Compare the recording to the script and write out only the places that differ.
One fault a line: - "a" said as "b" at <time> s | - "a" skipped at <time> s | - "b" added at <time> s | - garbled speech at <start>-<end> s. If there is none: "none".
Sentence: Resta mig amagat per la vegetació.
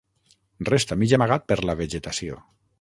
none